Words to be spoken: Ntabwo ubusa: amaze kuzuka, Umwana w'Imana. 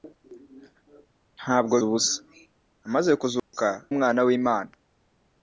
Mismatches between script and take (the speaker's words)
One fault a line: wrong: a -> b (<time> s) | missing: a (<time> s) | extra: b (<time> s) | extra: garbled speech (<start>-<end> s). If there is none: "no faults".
no faults